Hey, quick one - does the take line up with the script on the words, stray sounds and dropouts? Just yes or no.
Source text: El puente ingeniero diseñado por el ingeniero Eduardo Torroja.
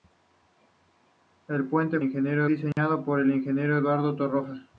no